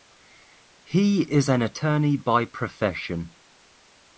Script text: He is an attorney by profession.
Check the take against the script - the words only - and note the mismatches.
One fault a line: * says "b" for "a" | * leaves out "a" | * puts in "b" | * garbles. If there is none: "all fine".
all fine